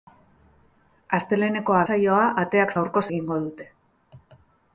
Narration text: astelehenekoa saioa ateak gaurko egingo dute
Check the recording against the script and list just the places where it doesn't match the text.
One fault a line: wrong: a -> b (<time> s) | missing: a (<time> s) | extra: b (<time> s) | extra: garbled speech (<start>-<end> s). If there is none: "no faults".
no faults